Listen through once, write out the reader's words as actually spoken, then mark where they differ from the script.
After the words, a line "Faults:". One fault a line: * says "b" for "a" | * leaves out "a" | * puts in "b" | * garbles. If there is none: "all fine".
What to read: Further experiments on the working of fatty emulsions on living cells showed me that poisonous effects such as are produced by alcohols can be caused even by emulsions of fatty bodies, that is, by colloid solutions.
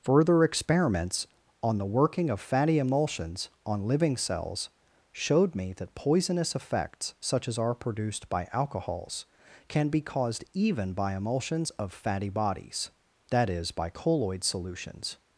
Further experiments on the working of fatty emulsions on living cells showed me that poisonous effects such as are produced by alcohols can be caused even by emulsions of fatty bodies, that is, by colloid solutions.
Faults:
all fine